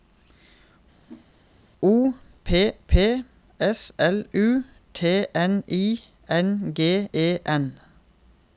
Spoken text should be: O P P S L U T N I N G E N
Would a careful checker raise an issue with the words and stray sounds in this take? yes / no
yes